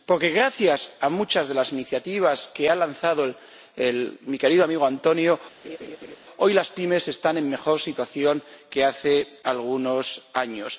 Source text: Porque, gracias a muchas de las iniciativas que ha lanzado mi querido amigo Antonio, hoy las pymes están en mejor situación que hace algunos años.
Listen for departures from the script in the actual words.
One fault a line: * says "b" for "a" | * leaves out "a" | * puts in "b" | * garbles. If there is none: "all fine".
all fine